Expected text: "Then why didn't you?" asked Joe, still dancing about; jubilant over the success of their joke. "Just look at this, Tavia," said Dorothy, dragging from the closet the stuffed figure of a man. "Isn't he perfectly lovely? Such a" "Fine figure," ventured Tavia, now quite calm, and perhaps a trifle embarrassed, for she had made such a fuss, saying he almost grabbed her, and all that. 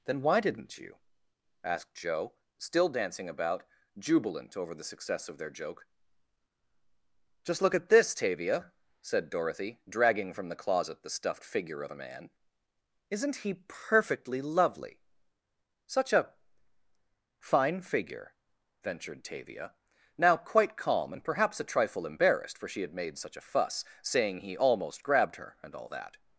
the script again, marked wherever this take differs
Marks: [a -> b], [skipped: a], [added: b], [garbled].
"Then why didn't you?" asked Joe, still dancing about; jubilant over the success of their joke. "Just look at this, Tavia," said Dorothy, dragging from the closet the stuffed figure of a man. "Isn't he perfectly lovely? Such a" "Fine figure," ventured Tavia, now quite calm, and perhaps a trifle embarrassed, for she had made such a fuss, saying he almost grabbed her, and all that.